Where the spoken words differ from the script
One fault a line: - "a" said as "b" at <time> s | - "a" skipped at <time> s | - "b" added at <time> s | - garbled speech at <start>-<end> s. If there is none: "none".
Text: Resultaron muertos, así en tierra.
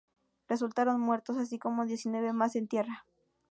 - "como diecinueve más" added at 1.6 s